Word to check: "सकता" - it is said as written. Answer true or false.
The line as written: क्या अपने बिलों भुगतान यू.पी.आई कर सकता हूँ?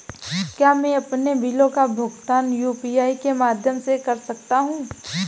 true